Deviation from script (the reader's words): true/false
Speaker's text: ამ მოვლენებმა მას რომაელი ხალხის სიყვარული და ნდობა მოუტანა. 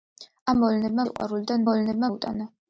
true